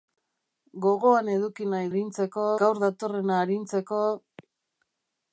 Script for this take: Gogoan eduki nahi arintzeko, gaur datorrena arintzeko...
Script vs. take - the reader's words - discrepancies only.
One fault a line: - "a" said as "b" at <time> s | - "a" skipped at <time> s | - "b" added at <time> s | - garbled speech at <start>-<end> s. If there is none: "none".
none